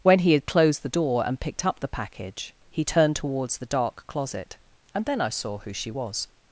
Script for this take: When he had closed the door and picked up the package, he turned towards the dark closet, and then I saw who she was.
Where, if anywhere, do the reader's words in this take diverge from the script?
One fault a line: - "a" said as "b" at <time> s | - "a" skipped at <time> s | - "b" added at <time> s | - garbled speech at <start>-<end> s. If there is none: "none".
none